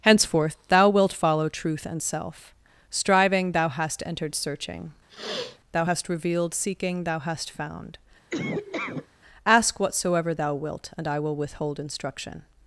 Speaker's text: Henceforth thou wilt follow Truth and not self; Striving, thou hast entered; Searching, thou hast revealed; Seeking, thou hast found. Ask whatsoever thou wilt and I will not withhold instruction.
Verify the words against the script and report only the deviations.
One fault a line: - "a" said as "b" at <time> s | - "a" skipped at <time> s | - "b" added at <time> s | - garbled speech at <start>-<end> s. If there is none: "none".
- "not" skipped at 2.0 s
- "not" skipped at 11.4 s